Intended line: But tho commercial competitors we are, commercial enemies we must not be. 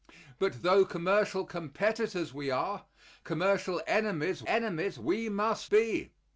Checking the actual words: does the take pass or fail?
fail